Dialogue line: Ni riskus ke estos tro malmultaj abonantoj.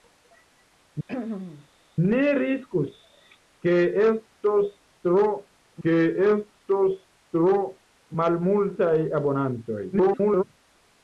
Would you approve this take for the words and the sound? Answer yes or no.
no